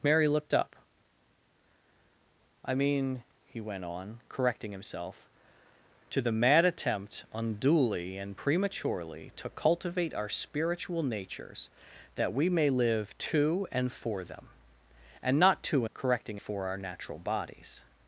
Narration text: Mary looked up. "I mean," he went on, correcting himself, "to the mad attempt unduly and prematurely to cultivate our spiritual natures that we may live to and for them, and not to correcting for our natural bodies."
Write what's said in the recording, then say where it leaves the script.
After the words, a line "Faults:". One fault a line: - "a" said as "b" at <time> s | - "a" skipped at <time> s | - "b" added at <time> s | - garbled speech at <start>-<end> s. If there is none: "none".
Mary looked up. "I mean," he went on, correcting himself, "to the mad attempt unduly and prematurely to cultivate our spiritual natures that we may live to and for them, and not to correcting for our natural bodies."
Faults:
none